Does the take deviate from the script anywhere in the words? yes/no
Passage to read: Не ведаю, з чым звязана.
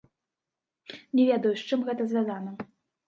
yes